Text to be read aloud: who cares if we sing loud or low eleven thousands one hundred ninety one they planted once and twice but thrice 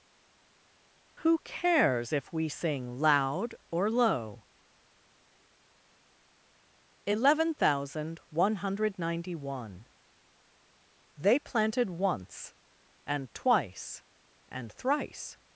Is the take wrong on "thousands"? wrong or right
wrong